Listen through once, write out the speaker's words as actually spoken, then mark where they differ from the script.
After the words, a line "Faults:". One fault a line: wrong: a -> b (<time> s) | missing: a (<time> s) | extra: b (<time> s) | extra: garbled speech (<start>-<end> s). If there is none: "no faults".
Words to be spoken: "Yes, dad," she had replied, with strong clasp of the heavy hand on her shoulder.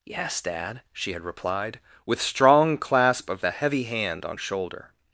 "Yes, dad," she had replied, with strong clasp of the heavy hand on shoulder.
Faults:
missing: her (4.4 s)